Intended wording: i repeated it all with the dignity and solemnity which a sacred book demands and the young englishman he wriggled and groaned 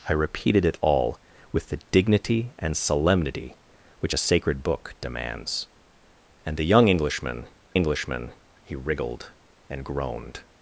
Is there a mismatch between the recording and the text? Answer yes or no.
yes